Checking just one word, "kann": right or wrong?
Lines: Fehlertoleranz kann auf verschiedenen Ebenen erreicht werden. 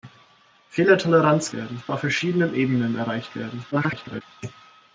wrong